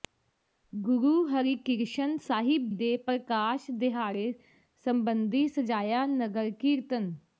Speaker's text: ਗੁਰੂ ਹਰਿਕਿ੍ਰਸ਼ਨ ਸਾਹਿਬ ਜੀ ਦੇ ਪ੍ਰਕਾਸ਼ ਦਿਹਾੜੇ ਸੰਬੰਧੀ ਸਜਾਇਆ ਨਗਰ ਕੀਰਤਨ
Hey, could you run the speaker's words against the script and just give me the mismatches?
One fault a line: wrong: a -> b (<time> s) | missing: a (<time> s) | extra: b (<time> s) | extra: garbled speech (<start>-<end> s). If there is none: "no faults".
missing: ਜੀ (2.7 s)